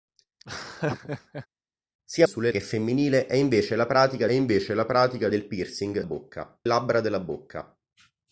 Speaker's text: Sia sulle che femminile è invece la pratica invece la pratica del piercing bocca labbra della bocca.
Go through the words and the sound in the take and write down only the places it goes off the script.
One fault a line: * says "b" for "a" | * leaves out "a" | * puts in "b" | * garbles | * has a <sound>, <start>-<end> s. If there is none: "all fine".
* has a laugh, 0.4-1.5 s